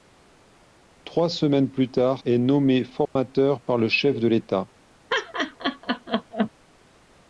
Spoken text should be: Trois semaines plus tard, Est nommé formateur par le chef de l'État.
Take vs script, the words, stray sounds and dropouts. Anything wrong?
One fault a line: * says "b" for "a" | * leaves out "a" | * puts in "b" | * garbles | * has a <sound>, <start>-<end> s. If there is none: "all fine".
* has a dropout, 3.1-3.2 s
* has a laugh, 5.1-6.5 s